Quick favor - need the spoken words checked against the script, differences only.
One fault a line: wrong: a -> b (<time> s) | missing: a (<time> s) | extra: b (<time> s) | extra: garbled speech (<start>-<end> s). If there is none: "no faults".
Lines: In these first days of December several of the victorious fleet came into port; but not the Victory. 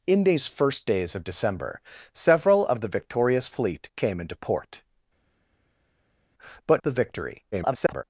missing: not (6.8 s)
extra: garbled speech (7.5-8.0 s)